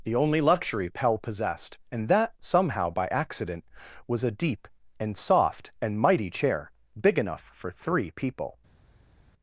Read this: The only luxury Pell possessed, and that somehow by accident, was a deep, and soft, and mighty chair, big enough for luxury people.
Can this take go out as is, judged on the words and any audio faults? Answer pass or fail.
fail